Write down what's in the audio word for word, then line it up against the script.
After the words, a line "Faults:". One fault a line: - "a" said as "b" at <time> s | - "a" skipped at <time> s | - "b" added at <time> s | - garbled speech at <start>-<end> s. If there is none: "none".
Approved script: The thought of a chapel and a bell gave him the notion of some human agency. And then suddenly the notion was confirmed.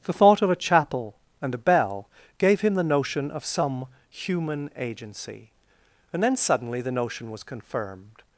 The thought of a chapel and a bell gave him the notion of some human agency. And then suddenly the notion was confirmed.
Faults:
none